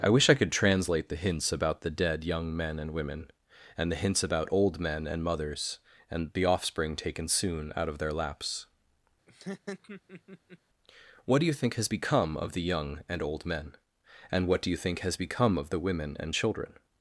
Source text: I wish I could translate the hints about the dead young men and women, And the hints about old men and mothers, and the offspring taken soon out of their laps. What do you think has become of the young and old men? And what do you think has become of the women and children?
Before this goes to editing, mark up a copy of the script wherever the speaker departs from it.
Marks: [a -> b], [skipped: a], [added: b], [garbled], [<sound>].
I wish I could translate the hints about the dead young men and women, And the hints about old men and mothers, and the offspring taken soon out of their laps. [laugh] What do you think has become of the young and old men? And what do you think has become of the women and children?